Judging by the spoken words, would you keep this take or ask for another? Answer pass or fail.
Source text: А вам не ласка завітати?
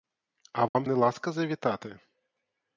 pass